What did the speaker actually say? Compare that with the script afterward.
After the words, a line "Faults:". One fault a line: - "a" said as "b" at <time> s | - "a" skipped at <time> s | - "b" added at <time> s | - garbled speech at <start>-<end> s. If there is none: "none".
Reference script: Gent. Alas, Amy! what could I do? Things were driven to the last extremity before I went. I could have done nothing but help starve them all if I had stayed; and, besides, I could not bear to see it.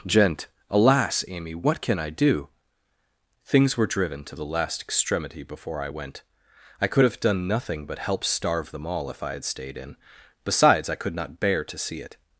Gent. Alas, Amy! what can I do? Things were driven to the last extremity before I went. I could have done nothing but help starve them all if I had stayed; in, besides, I could not bear to see it.
Faults:
- "could" said as "can" at 1.8 s
- "and" said as "in" at 9.8 s